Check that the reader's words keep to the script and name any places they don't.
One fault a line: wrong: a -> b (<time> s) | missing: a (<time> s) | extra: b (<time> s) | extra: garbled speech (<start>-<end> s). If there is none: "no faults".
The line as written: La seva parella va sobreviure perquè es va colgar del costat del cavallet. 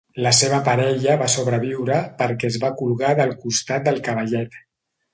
no faults